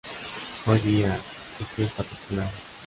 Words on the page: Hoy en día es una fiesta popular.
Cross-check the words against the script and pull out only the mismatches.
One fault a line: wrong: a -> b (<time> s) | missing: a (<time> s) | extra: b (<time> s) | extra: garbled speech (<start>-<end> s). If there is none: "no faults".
missing: en (0.8 s)
missing: una (1.8 s)